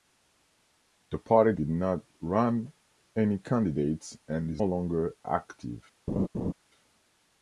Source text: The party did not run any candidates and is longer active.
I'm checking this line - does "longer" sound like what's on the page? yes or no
yes